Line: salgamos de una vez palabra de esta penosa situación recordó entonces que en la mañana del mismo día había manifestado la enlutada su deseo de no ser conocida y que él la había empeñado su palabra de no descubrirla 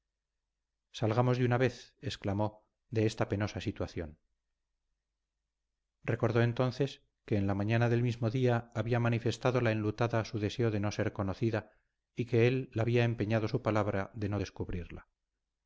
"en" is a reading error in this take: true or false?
false